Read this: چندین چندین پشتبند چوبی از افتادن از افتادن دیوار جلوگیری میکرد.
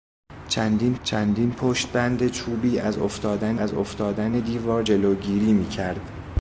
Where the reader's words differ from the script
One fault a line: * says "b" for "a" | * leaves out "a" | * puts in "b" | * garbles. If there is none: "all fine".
all fine